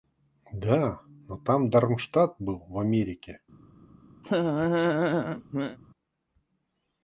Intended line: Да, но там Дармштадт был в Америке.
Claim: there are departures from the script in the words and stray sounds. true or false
true